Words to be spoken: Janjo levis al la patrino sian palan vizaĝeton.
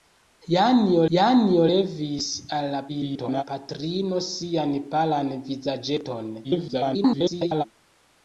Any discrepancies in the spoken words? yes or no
yes